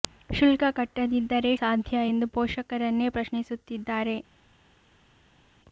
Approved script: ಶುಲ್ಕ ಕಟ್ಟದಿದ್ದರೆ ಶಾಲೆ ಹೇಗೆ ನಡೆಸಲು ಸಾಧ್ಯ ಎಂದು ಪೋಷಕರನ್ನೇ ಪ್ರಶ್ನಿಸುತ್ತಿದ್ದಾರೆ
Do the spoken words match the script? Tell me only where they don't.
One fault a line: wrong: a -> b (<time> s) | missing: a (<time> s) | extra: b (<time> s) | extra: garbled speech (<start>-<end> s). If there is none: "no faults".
missing: ಶಾಲೆ ಹೇಗೆ ನಡೆಸಲು (1.5 s)